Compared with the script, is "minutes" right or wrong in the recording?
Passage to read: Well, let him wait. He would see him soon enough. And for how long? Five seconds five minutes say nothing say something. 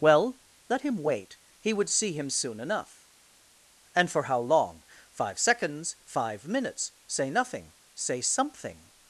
right